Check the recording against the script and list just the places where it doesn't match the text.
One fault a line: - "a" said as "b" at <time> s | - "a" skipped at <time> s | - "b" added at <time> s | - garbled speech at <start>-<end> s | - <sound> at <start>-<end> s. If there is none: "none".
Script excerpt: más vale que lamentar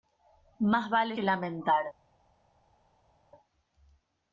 none